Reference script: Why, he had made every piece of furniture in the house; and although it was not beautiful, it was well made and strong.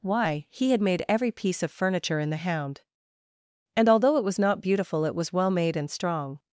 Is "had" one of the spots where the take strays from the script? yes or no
no